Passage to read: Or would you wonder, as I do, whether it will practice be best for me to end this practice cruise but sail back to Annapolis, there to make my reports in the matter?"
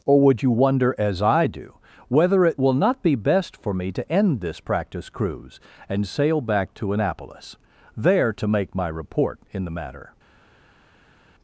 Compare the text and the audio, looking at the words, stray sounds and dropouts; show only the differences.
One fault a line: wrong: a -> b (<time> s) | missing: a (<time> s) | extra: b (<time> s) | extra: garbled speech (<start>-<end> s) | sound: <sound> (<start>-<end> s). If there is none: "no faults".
wrong: practice -> not (2.7 s)
wrong: but -> and (5.9 s)
wrong: reports -> report (8.9 s)